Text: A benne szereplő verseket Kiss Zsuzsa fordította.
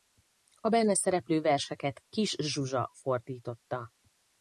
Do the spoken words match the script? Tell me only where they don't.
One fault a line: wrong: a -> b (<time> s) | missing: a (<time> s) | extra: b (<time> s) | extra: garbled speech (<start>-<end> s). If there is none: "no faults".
no faults